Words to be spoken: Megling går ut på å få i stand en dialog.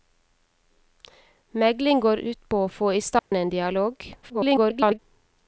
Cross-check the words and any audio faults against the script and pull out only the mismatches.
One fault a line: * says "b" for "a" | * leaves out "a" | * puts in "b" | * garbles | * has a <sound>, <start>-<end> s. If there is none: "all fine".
* has a dropout, 3.2-3.3 s
* garbles